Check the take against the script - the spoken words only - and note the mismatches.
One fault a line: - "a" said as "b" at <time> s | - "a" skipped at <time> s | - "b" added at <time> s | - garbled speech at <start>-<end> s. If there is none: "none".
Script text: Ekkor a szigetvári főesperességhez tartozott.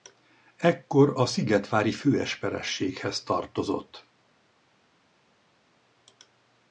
none